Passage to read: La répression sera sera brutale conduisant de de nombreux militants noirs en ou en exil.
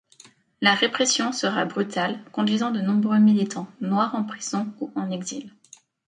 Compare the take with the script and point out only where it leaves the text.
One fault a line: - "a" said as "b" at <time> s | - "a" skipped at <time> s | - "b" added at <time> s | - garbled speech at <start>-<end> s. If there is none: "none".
- "sera" skipped at 1.6 s
- "de" skipped at 2.8 s
- "prison" added at 4.2 s